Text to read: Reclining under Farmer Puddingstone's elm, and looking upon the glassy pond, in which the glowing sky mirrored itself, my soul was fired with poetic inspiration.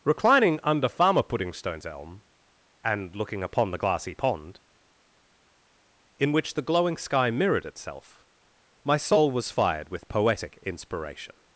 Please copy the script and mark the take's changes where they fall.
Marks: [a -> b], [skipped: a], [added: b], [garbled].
Reclining under Farmer Puddingstone's elm, and looking upon the glassy pond, in which the glowing sky mirrored itself, my soul was fired with poetic inspiration.